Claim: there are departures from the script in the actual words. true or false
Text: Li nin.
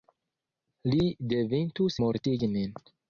true